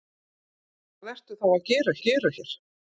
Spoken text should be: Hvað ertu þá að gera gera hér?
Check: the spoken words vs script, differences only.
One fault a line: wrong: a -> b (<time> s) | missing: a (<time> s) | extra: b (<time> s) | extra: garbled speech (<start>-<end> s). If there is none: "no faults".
no faults